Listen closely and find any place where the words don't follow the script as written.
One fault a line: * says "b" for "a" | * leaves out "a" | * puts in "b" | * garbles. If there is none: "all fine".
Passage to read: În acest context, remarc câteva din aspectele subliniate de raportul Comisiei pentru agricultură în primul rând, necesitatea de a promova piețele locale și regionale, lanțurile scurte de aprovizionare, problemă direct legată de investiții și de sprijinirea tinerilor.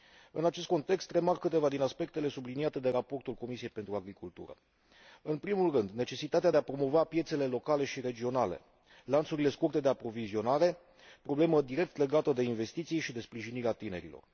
all fine